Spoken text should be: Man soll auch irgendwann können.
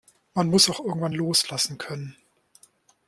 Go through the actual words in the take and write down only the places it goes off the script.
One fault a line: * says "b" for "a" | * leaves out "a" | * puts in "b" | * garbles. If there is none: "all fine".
* says "muss" for "soll"
* puts in "loslassen"